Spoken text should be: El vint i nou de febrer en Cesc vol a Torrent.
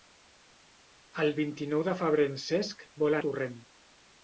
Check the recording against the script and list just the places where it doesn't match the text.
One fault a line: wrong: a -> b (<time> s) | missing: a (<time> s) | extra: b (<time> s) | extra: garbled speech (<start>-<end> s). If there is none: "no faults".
no faults